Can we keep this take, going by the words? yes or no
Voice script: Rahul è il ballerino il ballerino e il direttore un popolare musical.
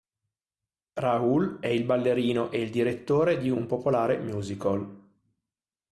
no